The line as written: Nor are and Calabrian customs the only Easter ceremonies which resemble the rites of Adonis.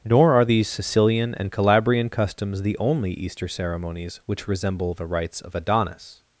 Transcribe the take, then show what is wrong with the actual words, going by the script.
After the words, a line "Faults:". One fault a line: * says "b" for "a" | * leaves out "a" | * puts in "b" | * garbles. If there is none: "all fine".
Nor are these Sicilian and Calabrian customs the only Easter ceremonies which resemble the rites of Adonis.
Faults:
* puts in "these Sicilian"